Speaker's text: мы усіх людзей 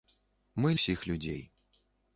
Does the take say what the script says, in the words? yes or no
yes